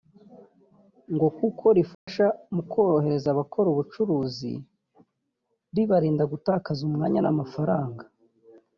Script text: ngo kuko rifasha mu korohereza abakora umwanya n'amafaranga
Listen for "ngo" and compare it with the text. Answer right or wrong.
right